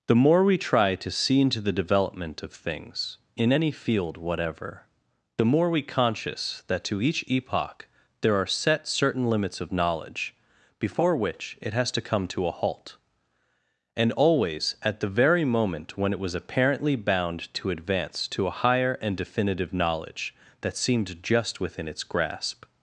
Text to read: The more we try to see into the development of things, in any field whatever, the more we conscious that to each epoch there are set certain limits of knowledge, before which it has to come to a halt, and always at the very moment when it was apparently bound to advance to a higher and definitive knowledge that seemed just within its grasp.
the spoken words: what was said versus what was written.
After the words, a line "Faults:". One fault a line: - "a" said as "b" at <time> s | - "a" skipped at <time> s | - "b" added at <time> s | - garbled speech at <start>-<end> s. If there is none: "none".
The more we try to see into the development of things, in any field whatever, the more we conscious that to each epoch there are set certain limits of knowledge, before which it has to come to a halt, and always at the very moment when it was apparently bound to advance to a higher and definitive knowledge that seemed just within its grasp.
Faults:
none